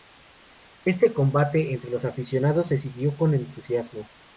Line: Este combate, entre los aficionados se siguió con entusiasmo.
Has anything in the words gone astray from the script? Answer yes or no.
no